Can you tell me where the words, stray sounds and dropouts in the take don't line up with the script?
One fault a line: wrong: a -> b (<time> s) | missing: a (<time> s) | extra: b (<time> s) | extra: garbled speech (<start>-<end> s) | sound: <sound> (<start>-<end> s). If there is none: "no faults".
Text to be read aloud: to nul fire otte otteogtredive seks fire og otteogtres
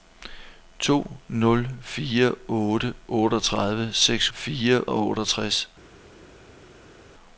no faults